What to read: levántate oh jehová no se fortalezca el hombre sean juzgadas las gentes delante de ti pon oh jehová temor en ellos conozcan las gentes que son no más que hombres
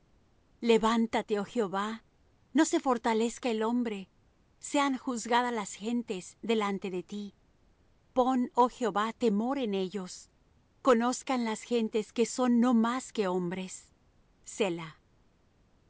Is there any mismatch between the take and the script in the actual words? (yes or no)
no